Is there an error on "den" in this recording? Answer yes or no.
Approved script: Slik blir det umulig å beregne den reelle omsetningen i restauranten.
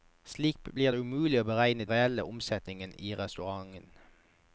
yes